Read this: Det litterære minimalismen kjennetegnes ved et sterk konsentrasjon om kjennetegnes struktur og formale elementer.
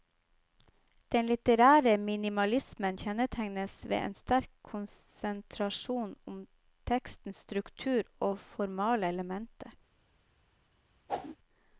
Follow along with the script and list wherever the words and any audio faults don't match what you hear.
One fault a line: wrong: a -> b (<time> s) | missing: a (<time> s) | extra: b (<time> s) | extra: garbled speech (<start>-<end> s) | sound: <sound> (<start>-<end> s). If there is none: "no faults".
wrong: Det -> Den (1.1 s)
wrong: et -> en (4.0 s)
wrong: kjennetegnes -> tekstens (6.9 s)
sound: whoosh (11.1-11.4 s)